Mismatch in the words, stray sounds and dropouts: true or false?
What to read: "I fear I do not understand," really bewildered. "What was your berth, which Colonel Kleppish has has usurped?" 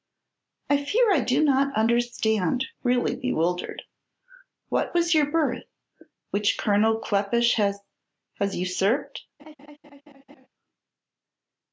true